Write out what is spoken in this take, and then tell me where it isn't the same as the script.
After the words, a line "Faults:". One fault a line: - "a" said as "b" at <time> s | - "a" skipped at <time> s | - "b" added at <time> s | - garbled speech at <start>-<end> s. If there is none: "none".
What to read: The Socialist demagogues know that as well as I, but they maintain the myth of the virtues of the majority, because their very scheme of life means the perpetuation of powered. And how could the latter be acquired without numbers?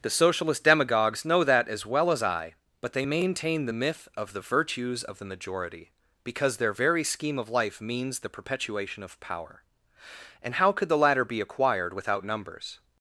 The Socialist demagogues know that as well as I, but they maintain the myth of the virtues of the majority, because their very scheme of life means the perpetuation of power. And how could the latter be acquired without numbers?
Faults:
- "powered" said as "power" at 9.2 s